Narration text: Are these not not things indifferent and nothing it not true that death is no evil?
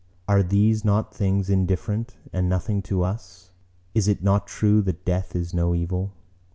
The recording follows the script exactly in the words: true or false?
false